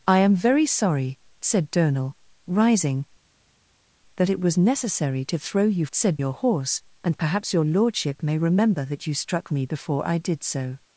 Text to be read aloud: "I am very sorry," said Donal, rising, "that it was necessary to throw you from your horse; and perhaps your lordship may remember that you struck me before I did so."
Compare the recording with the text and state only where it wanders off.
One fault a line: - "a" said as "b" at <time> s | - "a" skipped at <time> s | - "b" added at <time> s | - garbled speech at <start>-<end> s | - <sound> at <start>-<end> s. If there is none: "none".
- "from" said as "said" at 5.9 s